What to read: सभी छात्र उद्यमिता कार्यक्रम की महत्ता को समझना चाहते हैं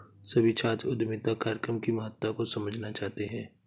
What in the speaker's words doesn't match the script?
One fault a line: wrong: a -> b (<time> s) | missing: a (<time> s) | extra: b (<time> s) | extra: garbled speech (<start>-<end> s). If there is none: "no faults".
no faults